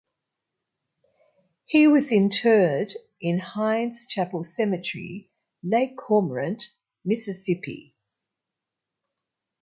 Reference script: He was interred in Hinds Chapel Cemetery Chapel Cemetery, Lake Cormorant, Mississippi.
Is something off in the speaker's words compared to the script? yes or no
yes